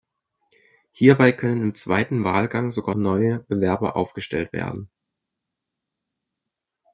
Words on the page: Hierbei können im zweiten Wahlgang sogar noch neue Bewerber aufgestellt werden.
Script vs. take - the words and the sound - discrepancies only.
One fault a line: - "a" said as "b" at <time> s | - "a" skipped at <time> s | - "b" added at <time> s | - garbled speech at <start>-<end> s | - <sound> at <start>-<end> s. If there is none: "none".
- "noch" skipped at 3.0 s